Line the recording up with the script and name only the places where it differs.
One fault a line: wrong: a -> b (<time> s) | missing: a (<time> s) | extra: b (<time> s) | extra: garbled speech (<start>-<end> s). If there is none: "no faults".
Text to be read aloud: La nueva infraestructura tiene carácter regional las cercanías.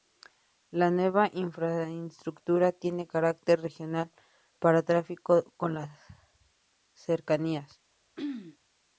extra: para tráfico con (4.6 s)